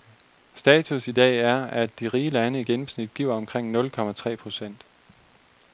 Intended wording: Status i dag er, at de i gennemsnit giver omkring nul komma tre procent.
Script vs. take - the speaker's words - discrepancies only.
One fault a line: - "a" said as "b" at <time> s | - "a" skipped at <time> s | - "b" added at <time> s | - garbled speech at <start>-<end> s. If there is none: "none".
- "rige lande" added at 2.1 s